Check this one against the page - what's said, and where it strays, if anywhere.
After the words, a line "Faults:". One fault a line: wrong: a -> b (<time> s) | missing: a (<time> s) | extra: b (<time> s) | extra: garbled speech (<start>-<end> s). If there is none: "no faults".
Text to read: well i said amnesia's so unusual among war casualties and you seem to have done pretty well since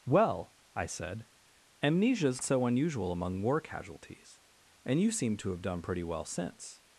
well i said amnesia's so unusual among war casualties and you seem to have done pretty well since
Faults:
no faults